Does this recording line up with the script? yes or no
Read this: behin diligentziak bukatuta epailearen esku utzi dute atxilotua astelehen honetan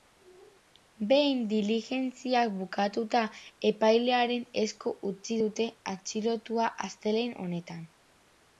yes